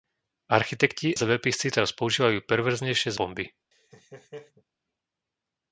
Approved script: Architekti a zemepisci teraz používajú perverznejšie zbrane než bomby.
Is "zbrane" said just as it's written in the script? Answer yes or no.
no